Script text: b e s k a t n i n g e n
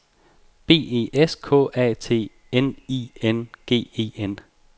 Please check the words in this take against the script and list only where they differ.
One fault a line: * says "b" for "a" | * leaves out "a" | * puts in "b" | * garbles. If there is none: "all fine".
all fine